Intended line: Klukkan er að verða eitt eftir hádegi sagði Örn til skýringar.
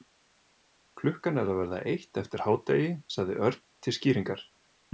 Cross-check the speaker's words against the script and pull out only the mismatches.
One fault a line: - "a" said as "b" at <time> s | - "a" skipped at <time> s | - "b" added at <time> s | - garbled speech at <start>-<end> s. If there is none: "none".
none